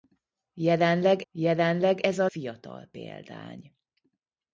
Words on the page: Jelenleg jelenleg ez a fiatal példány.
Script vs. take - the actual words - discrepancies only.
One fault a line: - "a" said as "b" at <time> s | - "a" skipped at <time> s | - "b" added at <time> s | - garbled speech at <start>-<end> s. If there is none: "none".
none